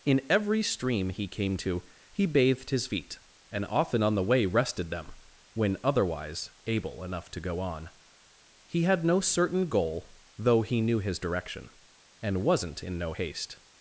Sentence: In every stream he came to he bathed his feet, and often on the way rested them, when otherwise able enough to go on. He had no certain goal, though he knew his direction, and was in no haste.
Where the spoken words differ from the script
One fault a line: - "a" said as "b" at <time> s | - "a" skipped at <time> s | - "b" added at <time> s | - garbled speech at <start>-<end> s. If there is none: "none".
- "was" said as "wasn't" at 12.4 s